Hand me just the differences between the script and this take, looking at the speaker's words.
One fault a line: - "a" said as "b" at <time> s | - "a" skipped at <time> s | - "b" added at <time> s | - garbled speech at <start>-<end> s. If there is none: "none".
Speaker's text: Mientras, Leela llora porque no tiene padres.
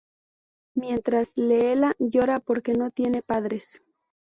none